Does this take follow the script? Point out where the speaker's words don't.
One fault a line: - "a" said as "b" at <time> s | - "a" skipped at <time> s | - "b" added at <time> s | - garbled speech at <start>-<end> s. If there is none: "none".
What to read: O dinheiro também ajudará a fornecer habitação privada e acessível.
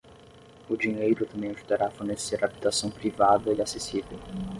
none